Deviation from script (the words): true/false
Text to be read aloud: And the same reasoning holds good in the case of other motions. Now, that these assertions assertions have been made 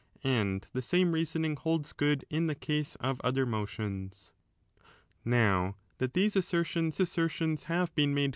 false